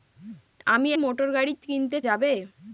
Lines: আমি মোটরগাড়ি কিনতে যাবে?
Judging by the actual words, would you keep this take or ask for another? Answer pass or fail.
pass